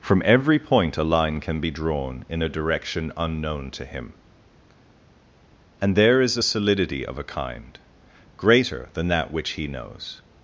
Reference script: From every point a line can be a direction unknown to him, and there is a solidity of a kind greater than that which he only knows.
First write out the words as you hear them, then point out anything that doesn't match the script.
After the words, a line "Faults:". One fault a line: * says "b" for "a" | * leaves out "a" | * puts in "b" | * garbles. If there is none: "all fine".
From every point a line can be drawn in a direction unknown to him, and there is a solidity of a kind greater than that which he knows.
Faults:
* puts in "drawn in"
* leaves out "only"